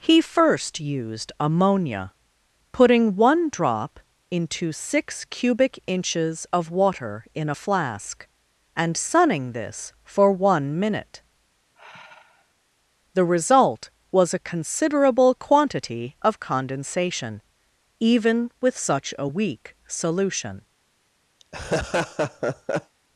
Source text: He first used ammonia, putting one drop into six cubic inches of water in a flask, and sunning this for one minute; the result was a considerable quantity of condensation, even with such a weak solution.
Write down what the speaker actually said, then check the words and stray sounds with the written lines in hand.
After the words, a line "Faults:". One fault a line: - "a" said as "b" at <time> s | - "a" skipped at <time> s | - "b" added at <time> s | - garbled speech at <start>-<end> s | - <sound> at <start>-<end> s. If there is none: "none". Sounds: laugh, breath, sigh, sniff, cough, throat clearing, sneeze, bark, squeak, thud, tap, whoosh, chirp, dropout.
He first used ammonia, putting one drop into six cubic inches of water in a flask, and sunning this for one minute; the result was a considerable quantity of condensation, even with such a weak solution.
Faults:
- sigh at 11.7-12.5 s
- laugh at 21.4-23.0 s